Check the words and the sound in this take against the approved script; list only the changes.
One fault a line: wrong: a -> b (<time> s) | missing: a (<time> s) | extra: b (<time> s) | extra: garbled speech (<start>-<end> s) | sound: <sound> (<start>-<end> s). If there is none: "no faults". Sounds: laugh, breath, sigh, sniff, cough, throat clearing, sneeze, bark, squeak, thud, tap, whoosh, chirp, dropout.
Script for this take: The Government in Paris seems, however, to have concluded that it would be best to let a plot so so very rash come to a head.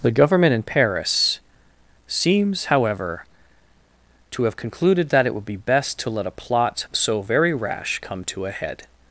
missing: so (7.2 s)